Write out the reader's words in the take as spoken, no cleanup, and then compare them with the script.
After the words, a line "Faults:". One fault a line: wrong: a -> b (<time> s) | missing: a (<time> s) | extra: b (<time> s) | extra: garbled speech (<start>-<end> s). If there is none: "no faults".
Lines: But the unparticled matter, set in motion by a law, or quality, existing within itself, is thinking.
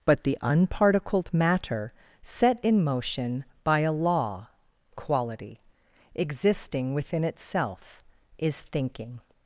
But the unparticled matter, set in motion by a law, quality, existing within itself, is thinking.
Faults:
missing: or (4.5 s)